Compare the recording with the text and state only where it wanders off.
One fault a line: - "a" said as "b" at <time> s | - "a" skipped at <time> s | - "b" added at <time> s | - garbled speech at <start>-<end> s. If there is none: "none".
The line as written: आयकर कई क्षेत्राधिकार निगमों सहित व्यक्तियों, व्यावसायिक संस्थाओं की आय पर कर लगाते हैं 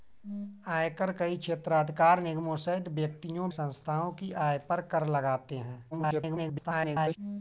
- "व्यावसायिक" skipped at 3.5 s
- garbled speech at 5.9-7.2 s